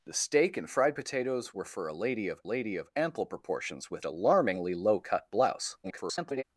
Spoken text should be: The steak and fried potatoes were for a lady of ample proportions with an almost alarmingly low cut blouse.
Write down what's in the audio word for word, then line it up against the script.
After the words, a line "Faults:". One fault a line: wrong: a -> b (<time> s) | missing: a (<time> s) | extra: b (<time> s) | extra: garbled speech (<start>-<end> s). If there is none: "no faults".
The steak and fried potatoes were for a lady of lady of ample proportions with alarmingly low cut blouse. [garbled]
Faults:
extra: lady of (2.4 s)
missing: an almost (4.0 s)
extra: garbled speech (5.8-6.4 s)